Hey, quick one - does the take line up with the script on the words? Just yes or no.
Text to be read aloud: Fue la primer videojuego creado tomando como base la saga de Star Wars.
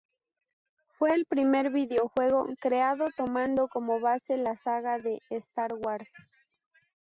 no